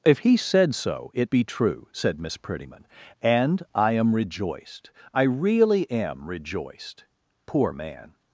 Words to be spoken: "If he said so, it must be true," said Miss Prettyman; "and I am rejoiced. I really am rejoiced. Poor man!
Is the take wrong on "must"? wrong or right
wrong